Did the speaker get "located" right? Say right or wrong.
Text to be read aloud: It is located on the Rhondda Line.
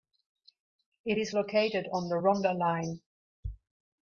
right